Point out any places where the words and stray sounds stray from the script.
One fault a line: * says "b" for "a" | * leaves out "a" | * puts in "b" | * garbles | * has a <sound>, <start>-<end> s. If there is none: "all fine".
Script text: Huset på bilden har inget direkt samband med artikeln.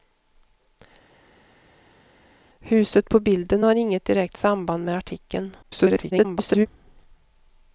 * garbles